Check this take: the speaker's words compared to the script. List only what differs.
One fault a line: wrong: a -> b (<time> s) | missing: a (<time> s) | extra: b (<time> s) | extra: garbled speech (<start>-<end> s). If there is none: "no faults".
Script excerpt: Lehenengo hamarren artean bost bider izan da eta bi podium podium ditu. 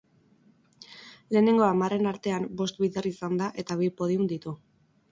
missing: podium (4.3 s)